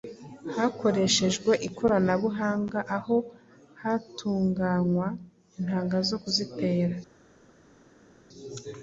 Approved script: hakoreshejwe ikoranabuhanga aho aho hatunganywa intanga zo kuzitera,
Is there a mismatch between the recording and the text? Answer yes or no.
yes